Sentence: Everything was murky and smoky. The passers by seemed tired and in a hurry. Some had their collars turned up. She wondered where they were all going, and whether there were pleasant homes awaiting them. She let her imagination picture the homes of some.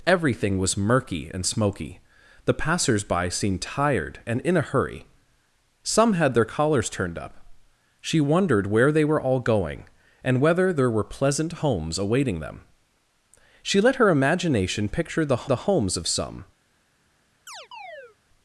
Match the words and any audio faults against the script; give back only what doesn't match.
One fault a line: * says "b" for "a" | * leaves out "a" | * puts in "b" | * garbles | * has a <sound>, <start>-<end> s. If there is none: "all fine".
* puts in "the"
* has a chirp, 17.5-18.2 s